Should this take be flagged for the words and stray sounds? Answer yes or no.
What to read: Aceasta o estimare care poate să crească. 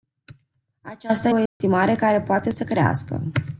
yes